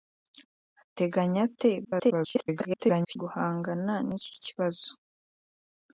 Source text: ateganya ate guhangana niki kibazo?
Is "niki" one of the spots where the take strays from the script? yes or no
no